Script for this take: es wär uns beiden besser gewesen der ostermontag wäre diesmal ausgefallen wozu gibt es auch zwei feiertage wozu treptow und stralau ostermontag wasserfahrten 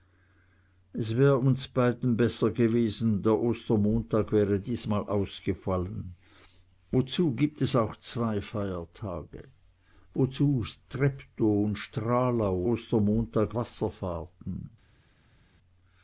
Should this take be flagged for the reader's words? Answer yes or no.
no